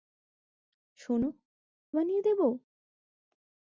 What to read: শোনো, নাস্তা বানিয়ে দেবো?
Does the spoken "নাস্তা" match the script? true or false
false